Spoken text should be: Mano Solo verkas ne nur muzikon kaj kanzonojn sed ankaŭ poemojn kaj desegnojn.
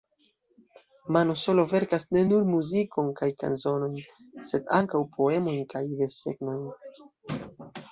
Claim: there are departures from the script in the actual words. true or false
false